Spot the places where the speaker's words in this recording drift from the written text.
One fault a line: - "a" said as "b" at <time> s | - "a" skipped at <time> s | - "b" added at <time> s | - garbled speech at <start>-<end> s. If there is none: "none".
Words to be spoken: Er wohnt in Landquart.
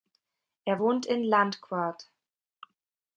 none